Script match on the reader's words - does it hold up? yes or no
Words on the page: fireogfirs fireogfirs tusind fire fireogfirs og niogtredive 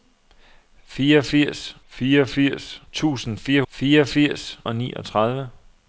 yes